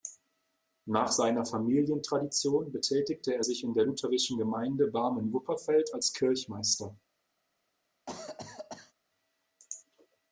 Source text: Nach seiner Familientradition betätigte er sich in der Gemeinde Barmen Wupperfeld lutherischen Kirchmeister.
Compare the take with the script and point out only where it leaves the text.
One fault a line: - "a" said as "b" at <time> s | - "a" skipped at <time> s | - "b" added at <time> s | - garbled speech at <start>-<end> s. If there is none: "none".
- "lutherischen" added at 3.8 s
- "lutherischen" said as "als" at 5.9 s